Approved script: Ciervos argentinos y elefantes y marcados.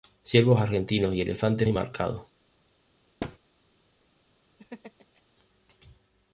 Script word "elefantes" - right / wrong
right